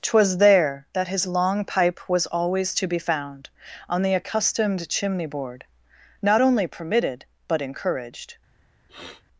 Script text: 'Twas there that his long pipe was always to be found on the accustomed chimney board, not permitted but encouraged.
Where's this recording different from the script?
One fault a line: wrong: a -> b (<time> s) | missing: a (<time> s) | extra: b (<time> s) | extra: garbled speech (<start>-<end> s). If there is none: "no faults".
extra: only (6.4 s)